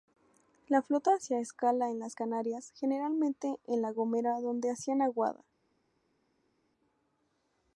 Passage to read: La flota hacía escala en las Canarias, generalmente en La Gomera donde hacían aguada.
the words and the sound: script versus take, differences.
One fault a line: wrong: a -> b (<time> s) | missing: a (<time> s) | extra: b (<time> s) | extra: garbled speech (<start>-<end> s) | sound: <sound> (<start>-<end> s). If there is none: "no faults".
no faults